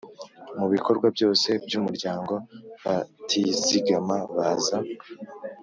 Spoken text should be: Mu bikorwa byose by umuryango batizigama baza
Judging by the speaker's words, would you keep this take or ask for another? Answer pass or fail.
pass